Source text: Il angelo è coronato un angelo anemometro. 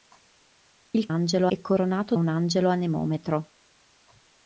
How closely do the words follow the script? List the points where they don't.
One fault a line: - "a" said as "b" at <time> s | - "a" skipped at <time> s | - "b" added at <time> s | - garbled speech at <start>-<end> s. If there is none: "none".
none